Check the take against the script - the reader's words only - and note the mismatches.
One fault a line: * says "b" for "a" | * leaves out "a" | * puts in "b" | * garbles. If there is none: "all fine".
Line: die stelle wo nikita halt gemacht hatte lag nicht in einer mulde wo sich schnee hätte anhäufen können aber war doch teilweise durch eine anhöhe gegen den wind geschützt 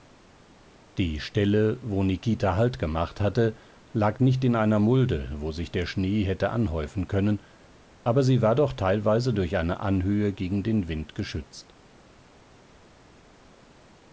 * puts in "der"
* puts in "sie"